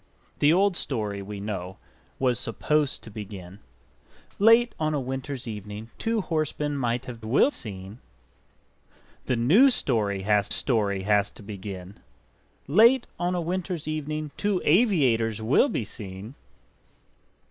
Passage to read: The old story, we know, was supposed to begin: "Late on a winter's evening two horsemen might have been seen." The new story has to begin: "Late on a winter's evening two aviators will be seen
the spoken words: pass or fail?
fail